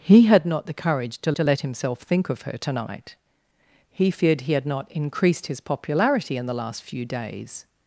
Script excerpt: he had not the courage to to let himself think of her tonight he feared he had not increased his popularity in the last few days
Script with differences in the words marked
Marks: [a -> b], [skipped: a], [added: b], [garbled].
he had not the courage to to let himself think of her tonight he feared he had not increased his popularity in the last few days